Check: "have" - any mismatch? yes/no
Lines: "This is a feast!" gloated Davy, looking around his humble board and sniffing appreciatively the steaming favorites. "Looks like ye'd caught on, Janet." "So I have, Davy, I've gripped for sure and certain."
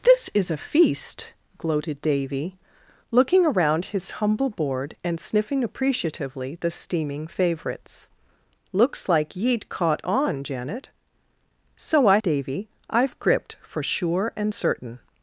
yes